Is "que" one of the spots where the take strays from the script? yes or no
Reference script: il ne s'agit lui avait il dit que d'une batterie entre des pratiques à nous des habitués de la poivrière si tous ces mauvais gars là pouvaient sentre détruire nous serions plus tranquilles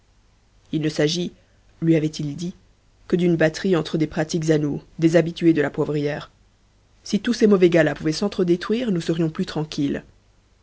no